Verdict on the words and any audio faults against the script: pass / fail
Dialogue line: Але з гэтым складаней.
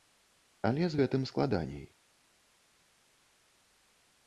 pass